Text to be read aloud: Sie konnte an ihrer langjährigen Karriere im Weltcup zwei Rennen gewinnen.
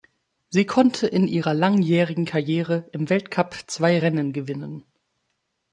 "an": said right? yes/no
no